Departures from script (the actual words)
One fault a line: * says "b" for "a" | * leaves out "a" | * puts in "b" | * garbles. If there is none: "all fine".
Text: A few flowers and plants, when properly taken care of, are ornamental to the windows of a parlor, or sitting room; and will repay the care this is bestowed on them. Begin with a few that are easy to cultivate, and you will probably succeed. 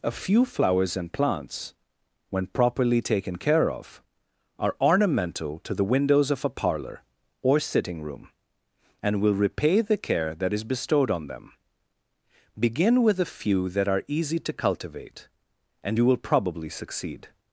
* says "that" for "this"